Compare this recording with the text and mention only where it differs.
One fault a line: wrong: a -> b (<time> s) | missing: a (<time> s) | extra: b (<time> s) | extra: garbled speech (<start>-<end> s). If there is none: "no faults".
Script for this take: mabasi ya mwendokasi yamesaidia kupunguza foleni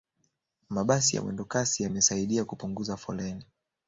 no faults